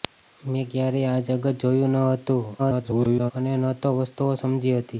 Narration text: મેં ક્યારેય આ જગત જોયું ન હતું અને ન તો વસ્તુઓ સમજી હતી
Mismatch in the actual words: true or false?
true